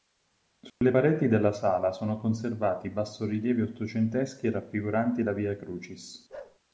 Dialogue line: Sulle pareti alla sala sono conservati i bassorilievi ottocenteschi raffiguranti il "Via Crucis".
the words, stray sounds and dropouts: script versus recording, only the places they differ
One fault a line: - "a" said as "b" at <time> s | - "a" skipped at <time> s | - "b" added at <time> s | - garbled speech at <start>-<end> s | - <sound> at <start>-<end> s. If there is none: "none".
- dropout at 0.7-0.8 s
- "alla" said as "della" at 1.3 s
- "il" said as "la" at 5.2 s
- bark at 6.3-6.6 s